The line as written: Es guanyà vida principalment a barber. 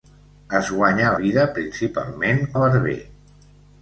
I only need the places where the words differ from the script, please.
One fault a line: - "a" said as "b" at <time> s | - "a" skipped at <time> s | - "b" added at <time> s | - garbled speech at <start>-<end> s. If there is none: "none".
none